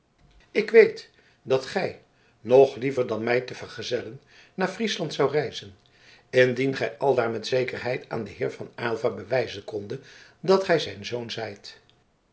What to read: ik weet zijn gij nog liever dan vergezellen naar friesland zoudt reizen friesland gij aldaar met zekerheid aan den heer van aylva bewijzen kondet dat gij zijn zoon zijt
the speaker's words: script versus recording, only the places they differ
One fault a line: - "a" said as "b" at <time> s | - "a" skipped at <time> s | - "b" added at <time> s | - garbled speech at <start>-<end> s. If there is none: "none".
- "zijn" said as "dat" at 1.4 s
- "mij te" added at 3.2 s
- "friesland" said as "indien" at 6.3 s